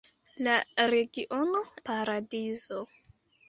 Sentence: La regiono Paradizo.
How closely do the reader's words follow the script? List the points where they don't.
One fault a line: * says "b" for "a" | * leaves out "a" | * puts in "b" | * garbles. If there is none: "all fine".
all fine